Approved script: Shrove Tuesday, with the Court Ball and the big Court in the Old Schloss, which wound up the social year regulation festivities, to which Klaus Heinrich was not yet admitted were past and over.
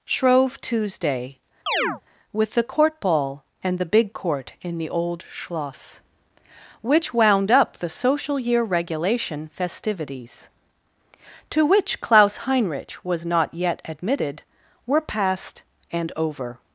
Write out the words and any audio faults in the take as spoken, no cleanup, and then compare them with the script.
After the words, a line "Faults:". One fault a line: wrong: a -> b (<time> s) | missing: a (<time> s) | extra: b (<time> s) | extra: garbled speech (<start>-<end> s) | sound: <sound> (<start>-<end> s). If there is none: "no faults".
Shrove Tuesday, with the Court Ball and the big Court in the Old Schloss, which wound up the social year regulation festivities, to which Klaus Heinrich was not yet admitted were past and over.
Faults:
sound: chirp (1.7-2.0 s)